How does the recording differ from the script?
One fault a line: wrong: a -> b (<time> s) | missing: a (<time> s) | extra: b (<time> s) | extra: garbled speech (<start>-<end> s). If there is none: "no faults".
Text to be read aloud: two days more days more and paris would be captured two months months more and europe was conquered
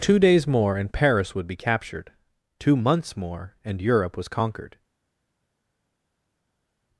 missing: days more (0.8 s)
missing: months (3.1 s)